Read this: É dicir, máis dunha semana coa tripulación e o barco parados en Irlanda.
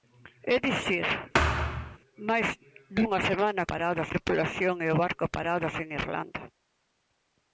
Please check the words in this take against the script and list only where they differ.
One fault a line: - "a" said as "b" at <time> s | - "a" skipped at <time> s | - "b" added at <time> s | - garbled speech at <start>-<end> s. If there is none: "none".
- "coa" said as "parados" at 3.7 s